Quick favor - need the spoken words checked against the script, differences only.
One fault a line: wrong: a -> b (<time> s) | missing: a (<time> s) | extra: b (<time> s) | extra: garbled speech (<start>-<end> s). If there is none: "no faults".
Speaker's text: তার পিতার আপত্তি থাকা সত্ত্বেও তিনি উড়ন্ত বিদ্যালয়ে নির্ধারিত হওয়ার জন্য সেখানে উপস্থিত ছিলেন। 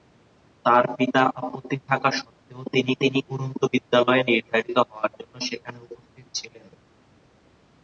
extra: তিনি (3.0 s)